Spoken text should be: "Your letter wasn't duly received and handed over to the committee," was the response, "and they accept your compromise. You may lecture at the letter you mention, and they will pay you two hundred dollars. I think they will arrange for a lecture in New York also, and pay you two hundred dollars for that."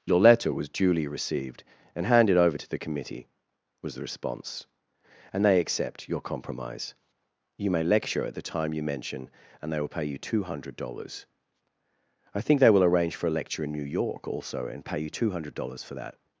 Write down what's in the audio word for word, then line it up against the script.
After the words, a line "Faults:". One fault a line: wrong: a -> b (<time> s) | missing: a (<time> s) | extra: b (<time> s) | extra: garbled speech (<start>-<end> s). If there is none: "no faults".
"Your letter was duly received and handed over to the committee," was the response, "and they accept your compromise. You may lecture at the time you mention, and they will pay you two hundred dollars. I think they will arrange for a lecture in New York also, and pay you two hundred dollars for that."
Faults:
wrong: wasn't -> was (0.5 s)
wrong: letter -> time (8.4 s)